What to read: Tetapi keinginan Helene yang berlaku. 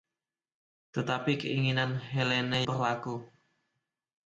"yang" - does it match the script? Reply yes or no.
no